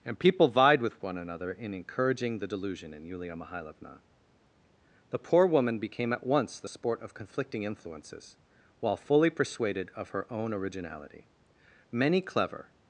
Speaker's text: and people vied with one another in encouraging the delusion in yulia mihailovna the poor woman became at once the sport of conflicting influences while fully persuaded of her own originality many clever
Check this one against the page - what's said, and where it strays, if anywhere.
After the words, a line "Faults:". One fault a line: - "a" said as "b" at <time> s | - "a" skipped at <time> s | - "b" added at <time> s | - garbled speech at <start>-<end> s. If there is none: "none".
and people vied with one another in encouraging the delusion in yulia mihailovna the poor woman became at once the sport of conflicting influences while fully persuaded of her own originality many clever
Faults:
none